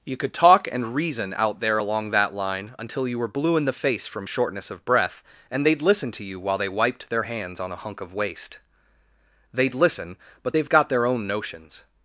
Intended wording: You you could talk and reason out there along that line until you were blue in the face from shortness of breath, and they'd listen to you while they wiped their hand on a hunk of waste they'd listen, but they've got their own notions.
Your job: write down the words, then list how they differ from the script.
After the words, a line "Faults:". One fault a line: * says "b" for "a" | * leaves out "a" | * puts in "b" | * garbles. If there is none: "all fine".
You could talk and reason out there along that line until you were blue in the face from shortness of breath, and they'd listen to you while they wiped their hands on a hunk of waste they'd listen, but they've got their own notions.
Faults:
* leaves out "you"
* says "hands" for "hand"